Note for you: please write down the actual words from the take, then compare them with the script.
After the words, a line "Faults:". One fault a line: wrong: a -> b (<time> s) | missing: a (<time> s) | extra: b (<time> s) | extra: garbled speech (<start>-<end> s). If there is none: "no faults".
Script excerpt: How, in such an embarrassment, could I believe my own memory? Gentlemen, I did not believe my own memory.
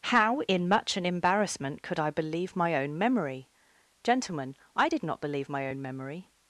How, in much an embarrassment, could I believe my own memory? Gentlemen, I did not believe my own memory.
Faults:
wrong: such -> much (0.7 s)